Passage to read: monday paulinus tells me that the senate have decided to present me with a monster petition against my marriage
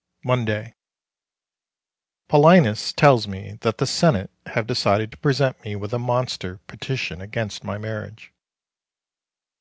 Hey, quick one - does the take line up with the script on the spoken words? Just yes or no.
yes